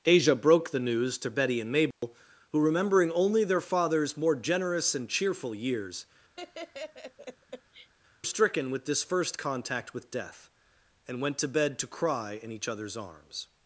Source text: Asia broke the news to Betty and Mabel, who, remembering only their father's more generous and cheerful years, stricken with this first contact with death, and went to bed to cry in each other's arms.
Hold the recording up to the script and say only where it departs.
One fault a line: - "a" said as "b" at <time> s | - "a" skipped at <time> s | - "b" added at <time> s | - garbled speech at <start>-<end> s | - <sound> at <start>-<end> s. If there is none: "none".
- dropout at 1.9-2.0 s
- laugh at 6.4-7.9 s